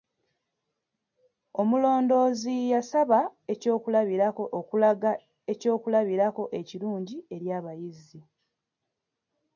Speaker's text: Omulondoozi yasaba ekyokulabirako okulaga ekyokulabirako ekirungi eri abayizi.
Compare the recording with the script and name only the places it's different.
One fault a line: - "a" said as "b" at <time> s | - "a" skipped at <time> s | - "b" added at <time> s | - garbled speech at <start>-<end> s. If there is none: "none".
none